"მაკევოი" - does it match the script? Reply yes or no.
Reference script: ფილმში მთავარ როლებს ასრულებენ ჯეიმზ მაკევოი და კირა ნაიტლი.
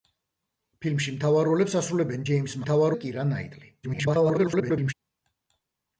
no